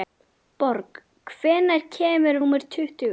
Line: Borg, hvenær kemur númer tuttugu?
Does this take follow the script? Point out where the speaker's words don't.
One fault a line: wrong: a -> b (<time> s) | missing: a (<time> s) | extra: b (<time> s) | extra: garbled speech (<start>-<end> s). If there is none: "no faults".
no faults